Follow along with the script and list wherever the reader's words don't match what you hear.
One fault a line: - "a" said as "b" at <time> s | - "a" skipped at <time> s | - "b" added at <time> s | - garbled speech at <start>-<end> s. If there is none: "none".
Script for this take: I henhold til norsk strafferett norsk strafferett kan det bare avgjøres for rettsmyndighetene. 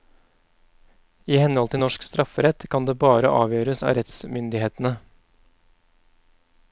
- "norsk strafferett" skipped at 2.7 s
- "for" said as "av" at 3.8 s